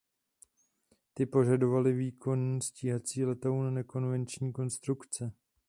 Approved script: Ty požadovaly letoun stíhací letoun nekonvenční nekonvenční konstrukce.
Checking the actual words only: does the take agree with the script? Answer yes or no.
no